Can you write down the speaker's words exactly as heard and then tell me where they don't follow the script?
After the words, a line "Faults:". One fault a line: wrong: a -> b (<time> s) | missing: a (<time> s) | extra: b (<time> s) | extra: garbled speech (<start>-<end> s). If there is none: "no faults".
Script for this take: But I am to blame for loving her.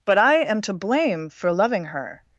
But I am to blame for loving her.
Faults:
no faults